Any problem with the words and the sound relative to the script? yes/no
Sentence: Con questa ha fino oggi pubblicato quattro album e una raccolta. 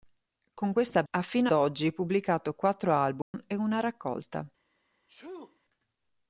yes